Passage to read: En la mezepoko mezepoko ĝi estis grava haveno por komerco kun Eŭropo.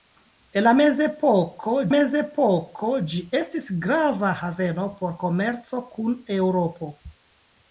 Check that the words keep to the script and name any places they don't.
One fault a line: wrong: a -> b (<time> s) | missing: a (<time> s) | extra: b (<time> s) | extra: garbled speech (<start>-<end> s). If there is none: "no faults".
no faults